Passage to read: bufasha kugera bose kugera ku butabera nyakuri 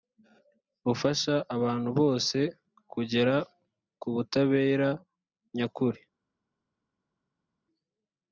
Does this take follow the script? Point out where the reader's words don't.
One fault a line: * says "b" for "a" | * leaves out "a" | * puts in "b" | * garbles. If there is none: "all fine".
* says "abantu" for "kugera"